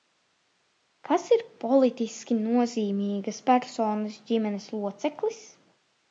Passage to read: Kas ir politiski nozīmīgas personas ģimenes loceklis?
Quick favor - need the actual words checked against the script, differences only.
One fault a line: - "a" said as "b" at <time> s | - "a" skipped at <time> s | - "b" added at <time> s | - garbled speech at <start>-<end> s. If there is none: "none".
none